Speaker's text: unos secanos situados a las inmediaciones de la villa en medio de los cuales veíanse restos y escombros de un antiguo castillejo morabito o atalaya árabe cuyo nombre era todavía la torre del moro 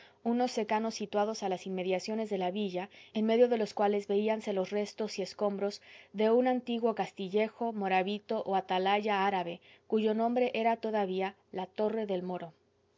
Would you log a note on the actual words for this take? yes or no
yes